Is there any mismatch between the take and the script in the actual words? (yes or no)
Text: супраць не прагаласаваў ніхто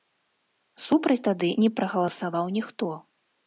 yes